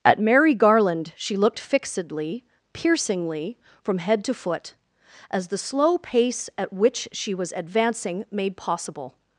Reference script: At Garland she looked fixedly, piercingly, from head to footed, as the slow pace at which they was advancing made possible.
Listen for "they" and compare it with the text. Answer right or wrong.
wrong